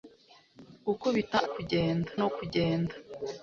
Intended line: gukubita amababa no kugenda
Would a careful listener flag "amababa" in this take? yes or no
yes